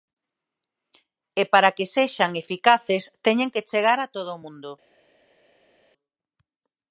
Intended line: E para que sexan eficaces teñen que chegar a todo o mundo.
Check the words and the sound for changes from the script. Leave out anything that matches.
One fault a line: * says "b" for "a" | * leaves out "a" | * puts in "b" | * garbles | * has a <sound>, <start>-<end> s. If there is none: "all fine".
all fine